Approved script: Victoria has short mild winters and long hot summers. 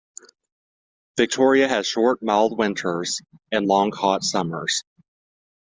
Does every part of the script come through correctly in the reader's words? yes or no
yes